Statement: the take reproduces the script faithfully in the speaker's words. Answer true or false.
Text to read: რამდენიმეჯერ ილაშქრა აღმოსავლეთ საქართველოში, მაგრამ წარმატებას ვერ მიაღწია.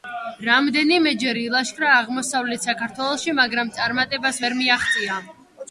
true